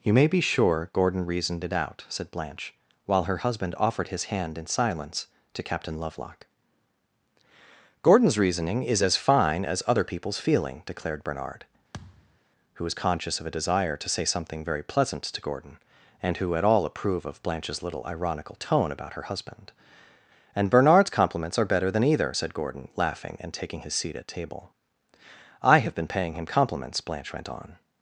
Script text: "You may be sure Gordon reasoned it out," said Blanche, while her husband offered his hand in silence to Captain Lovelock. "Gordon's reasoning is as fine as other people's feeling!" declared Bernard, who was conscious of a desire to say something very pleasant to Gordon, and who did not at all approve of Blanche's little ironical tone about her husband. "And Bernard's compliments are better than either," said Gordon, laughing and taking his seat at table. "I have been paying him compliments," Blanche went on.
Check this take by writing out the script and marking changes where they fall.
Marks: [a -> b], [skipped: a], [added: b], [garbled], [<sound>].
"You may be sure Gordon reasoned it out," said Blanche, while her husband offered his hand in silence to Captain Lovelock. "Gordon's reasoning is as fine as other people's feeling!" declared Bernard, [thud] who was conscious of a desire to say something very pleasant to Gordon, and who [skipped: did not] at all approve of Blanche's little ironical tone about her husband. "And Bernard's compliments are better than either," said Gordon, laughing and taking his seat at table. "I have been paying him compliments," Blanche went on.